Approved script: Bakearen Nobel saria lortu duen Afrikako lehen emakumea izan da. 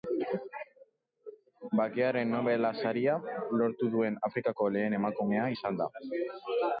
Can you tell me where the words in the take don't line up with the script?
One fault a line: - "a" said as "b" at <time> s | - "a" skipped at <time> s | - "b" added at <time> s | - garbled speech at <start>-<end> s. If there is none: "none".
none